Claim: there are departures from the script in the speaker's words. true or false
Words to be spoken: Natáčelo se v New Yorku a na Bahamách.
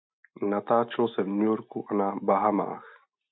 false